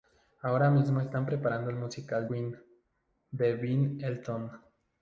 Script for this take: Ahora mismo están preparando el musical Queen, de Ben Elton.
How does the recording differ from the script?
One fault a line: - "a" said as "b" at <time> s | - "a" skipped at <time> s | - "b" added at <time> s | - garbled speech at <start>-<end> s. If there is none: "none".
none